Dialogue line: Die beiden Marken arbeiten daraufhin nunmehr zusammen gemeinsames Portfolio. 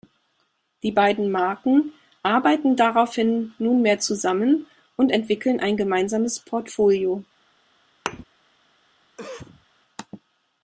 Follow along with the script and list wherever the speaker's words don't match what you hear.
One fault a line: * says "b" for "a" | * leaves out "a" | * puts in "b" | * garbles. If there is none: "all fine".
* puts in "und entwickeln ein"